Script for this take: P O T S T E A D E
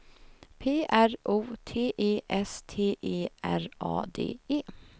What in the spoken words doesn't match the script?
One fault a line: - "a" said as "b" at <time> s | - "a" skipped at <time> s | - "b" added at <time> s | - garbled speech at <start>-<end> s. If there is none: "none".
- "R" added at 0.9 s
- "E" added at 1.9 s
- "R" added at 3.4 s